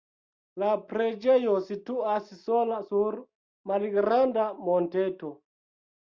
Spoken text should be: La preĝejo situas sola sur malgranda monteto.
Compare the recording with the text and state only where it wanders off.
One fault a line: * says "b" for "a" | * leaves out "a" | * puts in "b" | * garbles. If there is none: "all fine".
all fine